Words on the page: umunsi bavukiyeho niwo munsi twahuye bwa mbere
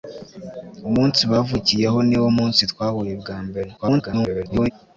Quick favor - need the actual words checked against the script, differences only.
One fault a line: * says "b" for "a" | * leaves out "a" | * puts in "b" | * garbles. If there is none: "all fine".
* garbles